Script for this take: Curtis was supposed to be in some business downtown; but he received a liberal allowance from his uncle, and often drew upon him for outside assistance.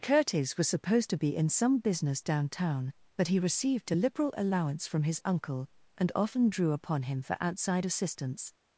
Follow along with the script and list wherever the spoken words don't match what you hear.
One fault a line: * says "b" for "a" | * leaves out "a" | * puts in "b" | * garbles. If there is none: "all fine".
all fine